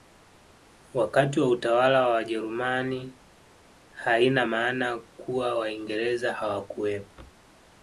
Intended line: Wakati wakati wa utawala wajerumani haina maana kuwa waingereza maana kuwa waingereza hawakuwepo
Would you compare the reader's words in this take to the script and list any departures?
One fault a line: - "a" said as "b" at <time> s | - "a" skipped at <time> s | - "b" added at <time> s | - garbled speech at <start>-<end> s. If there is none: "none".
- "wakati" skipped at 1.4 s
- "wa" added at 2.0 s
- "maana kuwa waingereza" skipped at 6.3 s